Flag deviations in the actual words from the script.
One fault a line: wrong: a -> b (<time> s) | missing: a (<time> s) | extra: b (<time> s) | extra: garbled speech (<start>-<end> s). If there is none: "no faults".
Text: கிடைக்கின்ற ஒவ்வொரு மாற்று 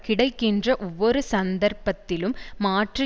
extra: சந்தர்ப்பத்திலும் (1.3 s)